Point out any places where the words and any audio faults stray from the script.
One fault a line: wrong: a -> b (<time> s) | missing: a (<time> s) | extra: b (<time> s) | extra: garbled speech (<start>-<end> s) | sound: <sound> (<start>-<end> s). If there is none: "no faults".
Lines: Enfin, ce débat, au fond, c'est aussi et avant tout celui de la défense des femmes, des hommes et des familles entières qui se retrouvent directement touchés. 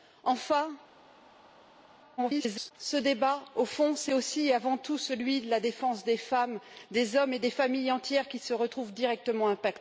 extra: garbled speech (2.2-2.7 s)